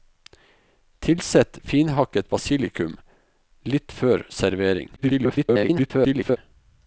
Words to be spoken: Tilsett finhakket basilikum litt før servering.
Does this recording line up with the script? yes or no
no